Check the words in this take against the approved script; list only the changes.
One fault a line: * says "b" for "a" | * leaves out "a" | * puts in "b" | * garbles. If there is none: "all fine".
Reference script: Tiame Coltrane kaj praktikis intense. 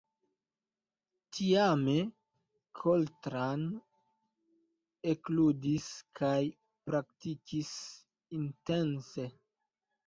* puts in "ekludis"